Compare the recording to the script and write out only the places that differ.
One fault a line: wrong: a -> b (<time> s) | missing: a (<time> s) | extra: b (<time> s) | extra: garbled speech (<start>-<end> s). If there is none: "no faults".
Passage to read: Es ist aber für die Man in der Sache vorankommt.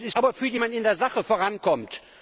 no faults